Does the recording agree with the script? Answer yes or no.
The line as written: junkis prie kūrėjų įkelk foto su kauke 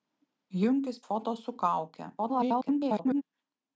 no